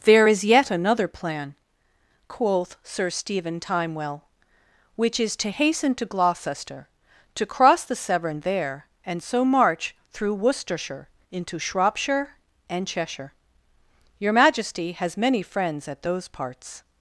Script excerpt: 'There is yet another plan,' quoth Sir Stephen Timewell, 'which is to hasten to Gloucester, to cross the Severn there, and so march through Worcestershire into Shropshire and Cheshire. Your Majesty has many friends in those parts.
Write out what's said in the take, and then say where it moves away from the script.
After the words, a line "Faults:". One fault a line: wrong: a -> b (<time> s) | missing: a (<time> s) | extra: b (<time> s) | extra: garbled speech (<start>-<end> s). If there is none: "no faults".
'There is yet another plan,' quoth Sir Stephen Timewell, 'which is to hasten to Gloucester, to cross the Severn there, and so march through Worcestershire into Shropshire and Cheshire. Your Majesty has many friends at those parts.
Faults:
wrong: in -> at (15.9 s)